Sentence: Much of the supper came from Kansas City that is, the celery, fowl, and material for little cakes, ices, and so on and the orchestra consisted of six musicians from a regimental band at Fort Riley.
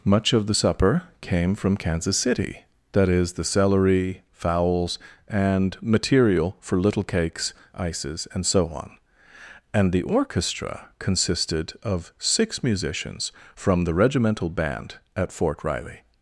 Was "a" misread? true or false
true